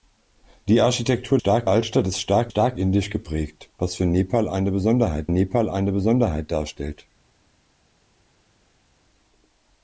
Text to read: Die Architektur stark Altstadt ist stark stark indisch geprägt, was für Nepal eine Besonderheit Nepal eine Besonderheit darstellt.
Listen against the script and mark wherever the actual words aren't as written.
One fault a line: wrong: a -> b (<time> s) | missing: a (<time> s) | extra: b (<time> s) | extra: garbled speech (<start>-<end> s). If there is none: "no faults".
no faults